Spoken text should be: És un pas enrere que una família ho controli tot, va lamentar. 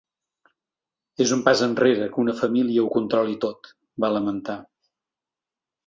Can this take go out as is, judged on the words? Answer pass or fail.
pass